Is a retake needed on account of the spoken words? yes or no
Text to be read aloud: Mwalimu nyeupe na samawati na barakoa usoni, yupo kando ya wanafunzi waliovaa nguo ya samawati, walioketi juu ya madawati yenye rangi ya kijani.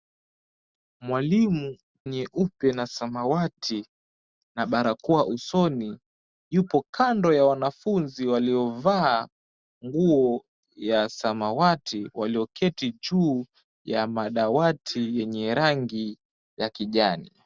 no